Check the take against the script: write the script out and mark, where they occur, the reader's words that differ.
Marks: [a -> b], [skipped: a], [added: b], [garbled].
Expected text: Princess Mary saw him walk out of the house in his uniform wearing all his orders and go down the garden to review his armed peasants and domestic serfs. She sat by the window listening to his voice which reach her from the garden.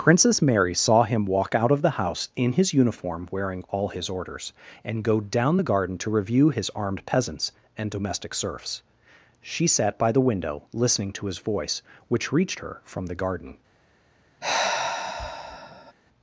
Princess Mary saw him walk out of the house in his uniform wearing all his orders and go down the garden to review his armed peasants and domestic serfs. She sat by the window listening to his voice which [reach -> reached] her from the garden.